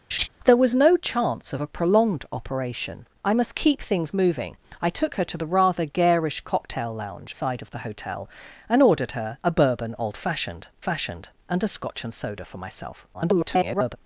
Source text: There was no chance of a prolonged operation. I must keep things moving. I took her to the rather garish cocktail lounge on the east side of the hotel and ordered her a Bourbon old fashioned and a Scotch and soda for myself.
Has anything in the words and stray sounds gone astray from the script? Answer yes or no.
yes